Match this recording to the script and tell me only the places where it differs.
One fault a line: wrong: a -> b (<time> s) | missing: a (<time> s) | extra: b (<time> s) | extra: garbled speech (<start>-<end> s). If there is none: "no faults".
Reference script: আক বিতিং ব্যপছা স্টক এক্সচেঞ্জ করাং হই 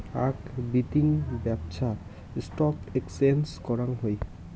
no faults